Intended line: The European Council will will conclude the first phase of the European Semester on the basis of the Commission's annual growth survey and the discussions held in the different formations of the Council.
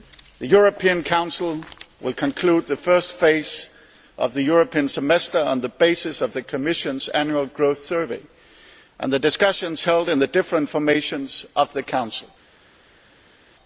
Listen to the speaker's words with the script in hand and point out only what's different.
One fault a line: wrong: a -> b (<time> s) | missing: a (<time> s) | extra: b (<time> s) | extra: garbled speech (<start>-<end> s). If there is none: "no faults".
missing: will (2.1 s)